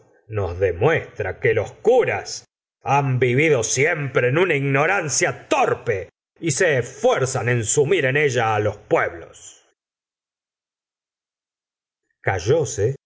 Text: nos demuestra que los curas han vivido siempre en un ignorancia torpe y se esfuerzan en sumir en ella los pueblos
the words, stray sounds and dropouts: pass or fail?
fail